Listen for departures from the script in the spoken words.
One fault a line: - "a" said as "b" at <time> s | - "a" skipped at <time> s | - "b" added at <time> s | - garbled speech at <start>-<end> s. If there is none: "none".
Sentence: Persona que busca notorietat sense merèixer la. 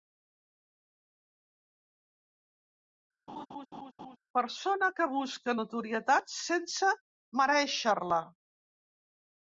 none